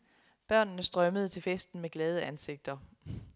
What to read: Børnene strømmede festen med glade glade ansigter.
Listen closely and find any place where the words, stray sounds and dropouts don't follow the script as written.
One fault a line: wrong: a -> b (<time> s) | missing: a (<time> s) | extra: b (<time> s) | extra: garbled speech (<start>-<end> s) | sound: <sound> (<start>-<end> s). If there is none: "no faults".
extra: til (1.3 s)
missing: glade (2.2 s)